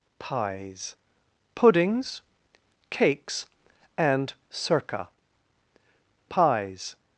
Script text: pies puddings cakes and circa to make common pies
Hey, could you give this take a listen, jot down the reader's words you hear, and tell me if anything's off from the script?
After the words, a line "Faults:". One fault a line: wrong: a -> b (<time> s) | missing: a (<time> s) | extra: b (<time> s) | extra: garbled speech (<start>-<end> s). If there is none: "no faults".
pies puddings cakes and circa pies
Faults:
missing: to make common (5.1 s)